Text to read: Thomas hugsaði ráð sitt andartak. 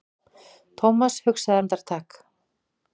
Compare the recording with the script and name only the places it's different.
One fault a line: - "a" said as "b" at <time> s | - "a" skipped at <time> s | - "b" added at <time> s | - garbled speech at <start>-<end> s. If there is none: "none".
- "ráð sitt" skipped at 1.6 s